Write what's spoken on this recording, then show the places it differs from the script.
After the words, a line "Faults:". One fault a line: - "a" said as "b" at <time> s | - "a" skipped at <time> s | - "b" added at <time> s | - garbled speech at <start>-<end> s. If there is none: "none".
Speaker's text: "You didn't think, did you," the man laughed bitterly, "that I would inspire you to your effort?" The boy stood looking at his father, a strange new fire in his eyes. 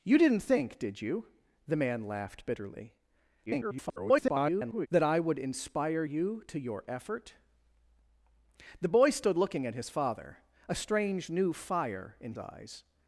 "You didn't think, did you," the man laughed bitterly, [garbled] "that I would inspire you to your effort?" The boy stood looking at his father, a strange new fire in eyes.
Faults:
- garbled speech at 3.5-4.9 s
- "his" skipped at 12.3 s